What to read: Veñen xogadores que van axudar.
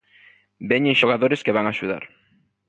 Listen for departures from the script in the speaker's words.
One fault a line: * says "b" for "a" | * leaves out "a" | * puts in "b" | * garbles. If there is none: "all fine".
all fine